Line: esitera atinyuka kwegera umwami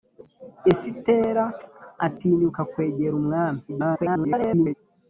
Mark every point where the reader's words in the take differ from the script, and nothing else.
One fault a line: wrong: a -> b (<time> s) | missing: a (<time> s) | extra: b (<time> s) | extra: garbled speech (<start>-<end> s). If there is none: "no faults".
extra: garbled speech (3.7-4.7 s)